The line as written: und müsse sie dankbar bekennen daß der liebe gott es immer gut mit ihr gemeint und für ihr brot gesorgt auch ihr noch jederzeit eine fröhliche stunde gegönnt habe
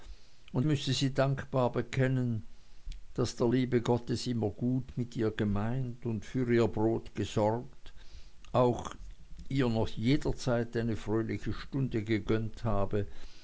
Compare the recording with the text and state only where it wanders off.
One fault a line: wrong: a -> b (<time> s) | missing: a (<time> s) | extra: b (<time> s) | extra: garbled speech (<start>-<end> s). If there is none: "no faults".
no faults